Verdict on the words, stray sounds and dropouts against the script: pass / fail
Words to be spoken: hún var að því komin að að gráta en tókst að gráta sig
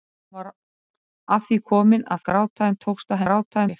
pass